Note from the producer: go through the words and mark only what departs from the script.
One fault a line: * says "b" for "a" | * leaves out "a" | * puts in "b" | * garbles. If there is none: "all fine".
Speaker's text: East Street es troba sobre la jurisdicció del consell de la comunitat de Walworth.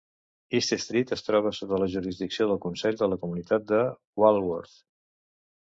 * says "sota" for "sobre"